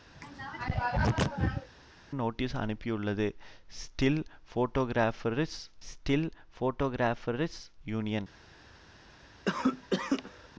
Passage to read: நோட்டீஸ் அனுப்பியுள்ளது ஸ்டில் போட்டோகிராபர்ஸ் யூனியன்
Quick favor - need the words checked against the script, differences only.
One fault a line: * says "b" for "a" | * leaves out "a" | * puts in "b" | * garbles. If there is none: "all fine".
* puts in "ஸ்டில் போட்டோகிராபர்ஸ்"